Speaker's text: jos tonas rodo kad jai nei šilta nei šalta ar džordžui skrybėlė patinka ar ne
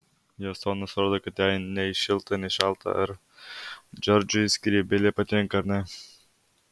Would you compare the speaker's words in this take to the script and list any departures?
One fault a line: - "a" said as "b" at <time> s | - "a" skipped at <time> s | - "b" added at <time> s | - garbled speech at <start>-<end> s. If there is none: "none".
none